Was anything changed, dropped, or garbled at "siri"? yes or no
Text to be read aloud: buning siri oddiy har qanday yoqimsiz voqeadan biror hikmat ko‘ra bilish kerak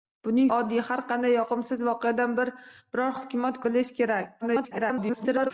yes